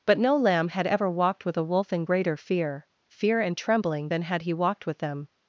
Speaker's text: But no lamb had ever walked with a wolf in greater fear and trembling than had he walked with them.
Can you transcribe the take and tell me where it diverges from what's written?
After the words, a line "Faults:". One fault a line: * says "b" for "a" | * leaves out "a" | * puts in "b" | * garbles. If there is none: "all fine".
But no lamb had ever walked with a wolf in greater fear fear and trembling than had he walked with them.
Faults:
* puts in "fear"